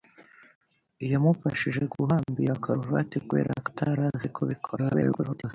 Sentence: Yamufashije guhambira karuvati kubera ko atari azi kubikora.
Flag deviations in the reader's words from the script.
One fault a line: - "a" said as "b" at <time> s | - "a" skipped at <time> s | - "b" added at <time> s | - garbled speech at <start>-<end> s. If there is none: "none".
- garbled speech at 4.8-5.5 s